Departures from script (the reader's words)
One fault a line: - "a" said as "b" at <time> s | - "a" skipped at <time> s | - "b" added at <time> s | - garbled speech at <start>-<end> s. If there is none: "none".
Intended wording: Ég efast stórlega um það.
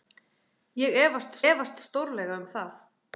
- "efast" added at 1.5 s